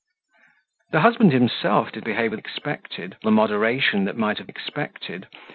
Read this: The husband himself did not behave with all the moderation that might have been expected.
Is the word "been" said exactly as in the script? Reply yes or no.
no